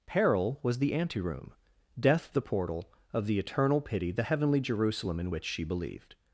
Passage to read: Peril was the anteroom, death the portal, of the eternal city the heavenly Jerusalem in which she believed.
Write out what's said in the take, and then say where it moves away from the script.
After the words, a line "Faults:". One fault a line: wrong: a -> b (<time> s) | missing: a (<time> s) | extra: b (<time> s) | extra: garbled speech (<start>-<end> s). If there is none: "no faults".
Peril was the anteroom, death the portal, of the eternal pity the heavenly Jerusalem in which she believed.
Faults:
wrong: city -> pity (3.8 s)